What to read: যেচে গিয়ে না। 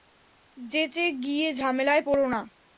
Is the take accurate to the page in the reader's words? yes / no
no